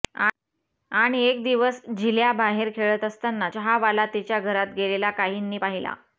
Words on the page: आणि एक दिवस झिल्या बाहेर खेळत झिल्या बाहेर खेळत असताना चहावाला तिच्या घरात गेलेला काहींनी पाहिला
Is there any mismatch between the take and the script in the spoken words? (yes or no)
yes